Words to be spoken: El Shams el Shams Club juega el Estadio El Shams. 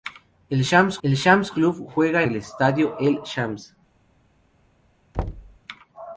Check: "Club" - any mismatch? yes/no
no